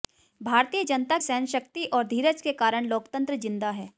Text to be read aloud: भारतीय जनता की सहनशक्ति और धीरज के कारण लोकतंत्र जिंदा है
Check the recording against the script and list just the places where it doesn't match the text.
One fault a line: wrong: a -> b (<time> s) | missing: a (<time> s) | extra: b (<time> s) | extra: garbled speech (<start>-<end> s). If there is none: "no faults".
missing: की (1.2 s)